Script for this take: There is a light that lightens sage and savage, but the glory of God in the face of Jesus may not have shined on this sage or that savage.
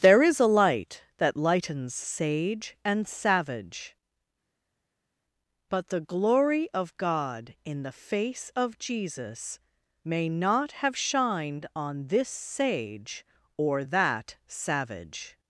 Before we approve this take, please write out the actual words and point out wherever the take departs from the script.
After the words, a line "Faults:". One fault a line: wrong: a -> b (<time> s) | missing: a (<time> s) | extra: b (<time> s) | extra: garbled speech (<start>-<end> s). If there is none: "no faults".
There is a light that lightens sage and savage, but the glory of God in the face of Jesus may not have shined on this sage or that savage.
Faults:
no faults